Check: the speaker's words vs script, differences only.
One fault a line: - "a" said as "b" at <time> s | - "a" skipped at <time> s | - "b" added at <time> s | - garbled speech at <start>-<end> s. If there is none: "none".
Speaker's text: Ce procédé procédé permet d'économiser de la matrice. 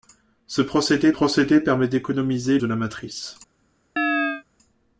none